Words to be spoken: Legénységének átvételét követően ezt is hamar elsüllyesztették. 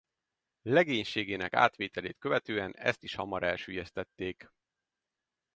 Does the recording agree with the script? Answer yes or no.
yes